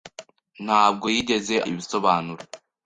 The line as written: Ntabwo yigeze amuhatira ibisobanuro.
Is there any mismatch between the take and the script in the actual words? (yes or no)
yes